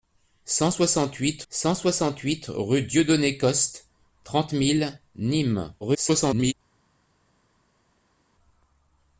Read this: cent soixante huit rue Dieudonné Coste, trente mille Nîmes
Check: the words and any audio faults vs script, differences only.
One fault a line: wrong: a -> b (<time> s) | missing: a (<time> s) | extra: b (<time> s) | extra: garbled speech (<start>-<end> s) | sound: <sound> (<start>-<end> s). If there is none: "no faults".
extra: cent soixante huit (1.5 s)
extra: garbled speech (5.8-6.5 s)